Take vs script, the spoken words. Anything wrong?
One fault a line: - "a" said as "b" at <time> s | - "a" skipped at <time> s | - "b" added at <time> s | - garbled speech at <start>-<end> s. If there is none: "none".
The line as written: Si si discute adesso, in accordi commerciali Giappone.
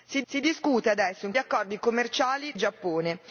none